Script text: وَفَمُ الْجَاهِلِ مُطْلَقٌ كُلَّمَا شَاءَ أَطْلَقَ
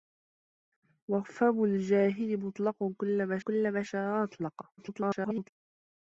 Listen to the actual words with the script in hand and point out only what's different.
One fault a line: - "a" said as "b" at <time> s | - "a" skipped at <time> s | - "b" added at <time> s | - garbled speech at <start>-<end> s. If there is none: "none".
- "كُلَّمَا" added at 3.4 s
- garbled speech at 4.8-5.5 s